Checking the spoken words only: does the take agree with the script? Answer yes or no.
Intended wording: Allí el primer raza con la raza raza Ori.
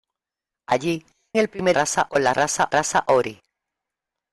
yes